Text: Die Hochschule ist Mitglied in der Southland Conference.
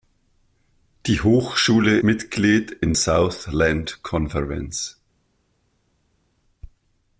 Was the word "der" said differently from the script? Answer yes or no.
yes